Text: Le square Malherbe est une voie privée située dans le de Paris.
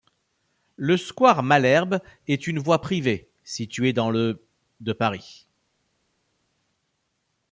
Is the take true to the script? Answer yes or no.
yes